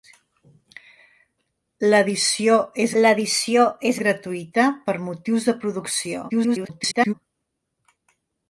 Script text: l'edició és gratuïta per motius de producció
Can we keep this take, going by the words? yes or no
no